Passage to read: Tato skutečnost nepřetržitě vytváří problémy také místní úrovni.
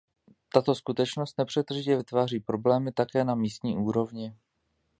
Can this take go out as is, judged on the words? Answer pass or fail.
fail